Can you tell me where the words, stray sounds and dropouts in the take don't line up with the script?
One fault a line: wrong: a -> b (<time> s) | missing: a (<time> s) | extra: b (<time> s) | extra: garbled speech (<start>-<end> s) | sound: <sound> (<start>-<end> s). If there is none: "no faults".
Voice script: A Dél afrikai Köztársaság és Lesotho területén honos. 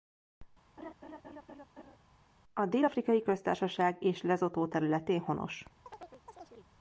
sound: laugh (0.8-2.0 s)
sound: chirp (5.9-6.7 s)